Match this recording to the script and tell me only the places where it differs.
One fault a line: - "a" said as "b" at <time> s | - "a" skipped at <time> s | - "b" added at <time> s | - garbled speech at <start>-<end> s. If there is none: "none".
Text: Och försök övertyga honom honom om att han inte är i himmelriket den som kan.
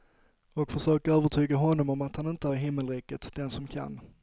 - "honom" skipped at 1.9 s